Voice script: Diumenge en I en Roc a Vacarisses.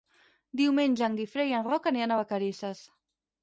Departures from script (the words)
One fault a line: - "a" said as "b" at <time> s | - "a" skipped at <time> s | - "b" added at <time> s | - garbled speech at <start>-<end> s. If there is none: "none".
- "Guifré" added at 1.2 s
- "aniran" added at 1.9 s